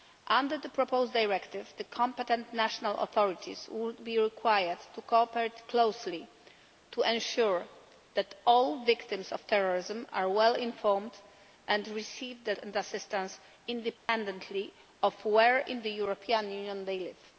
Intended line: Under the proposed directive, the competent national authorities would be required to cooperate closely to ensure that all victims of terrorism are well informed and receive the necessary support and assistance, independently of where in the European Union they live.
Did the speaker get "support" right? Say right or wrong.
wrong